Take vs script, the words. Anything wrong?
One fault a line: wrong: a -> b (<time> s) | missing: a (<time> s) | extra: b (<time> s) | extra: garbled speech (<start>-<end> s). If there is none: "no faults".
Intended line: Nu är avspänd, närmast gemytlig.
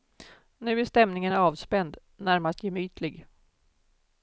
extra: stämningen (0.8 s)